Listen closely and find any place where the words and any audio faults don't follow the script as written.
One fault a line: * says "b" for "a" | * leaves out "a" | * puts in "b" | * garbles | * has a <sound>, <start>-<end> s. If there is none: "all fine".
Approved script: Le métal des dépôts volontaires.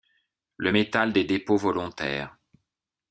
all fine